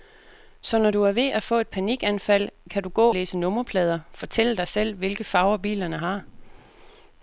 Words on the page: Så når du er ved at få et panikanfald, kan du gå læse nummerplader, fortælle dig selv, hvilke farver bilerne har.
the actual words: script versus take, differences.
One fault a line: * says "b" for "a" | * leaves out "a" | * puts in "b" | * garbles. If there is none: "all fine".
all fine